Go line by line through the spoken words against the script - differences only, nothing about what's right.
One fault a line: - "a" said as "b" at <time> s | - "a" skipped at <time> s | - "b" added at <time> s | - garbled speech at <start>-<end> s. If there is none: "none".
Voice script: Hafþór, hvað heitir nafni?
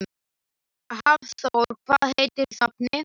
none